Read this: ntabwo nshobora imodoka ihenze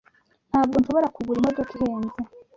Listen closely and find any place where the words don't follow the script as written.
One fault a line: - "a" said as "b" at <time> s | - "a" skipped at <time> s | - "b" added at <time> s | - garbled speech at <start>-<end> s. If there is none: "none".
- "kugura" added at 1.2 s